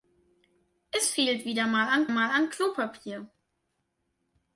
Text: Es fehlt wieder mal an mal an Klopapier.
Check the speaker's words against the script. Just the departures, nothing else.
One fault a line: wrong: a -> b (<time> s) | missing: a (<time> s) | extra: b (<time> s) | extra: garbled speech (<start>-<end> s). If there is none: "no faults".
no faults